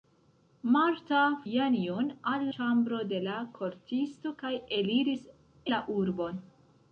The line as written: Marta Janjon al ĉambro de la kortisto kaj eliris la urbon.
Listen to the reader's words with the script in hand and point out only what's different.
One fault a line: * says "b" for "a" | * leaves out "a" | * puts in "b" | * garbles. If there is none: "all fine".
all fine